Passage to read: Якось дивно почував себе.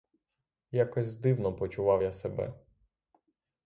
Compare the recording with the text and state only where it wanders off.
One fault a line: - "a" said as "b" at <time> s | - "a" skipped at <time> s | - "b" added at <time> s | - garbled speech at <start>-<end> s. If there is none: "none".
- "я" added at 2.0 s